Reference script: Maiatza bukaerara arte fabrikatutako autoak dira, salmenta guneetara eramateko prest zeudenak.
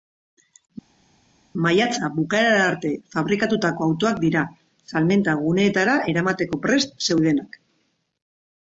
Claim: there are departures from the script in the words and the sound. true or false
false